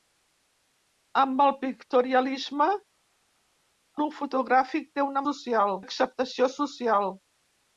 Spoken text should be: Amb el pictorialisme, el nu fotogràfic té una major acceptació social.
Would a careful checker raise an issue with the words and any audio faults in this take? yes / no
yes